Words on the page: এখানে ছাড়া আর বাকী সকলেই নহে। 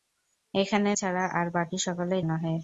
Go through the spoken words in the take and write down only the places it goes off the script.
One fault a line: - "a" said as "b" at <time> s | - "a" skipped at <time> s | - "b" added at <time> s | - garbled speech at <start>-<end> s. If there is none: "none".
none